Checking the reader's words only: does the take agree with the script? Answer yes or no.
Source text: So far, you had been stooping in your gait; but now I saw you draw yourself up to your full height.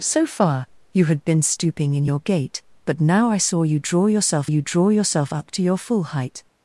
no